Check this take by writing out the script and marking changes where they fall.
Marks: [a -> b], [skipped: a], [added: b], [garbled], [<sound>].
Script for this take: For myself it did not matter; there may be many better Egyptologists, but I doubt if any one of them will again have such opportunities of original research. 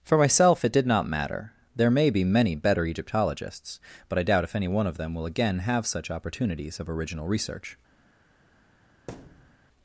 For myself it did not matter; there may be many better Egyptologists, but I doubt if any one of them will again have such opportunities of original research. [thud]